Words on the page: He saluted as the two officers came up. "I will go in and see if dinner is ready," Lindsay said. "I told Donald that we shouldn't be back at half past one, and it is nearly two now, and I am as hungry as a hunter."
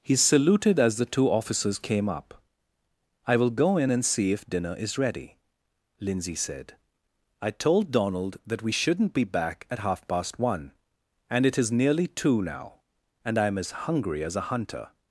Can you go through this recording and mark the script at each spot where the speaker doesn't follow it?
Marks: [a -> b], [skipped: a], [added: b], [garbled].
He saluted as the two officers came up. "I will go in and see if dinner is ready," Lindsay said. "I told Donald that we shouldn't be back at half past one, and it is nearly two now, and I am as hungry as a hunter."